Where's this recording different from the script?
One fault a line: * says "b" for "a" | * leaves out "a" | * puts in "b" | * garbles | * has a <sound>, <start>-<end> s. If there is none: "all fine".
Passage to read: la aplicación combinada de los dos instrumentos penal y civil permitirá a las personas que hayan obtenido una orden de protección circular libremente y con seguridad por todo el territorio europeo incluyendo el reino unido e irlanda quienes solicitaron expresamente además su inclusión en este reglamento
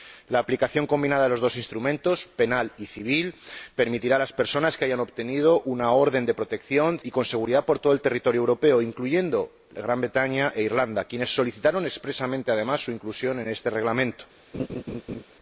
* leaves out "circular libremente"
* has a laugh, 14.5-15.2 s